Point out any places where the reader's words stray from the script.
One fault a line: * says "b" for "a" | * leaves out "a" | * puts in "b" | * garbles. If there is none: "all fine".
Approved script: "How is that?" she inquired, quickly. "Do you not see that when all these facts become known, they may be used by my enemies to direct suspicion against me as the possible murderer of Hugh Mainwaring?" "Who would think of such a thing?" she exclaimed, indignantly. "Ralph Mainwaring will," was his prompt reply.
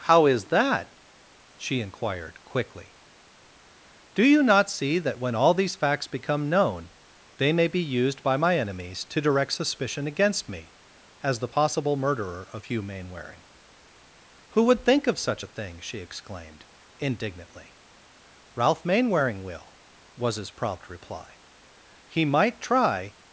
* puts in "He might try"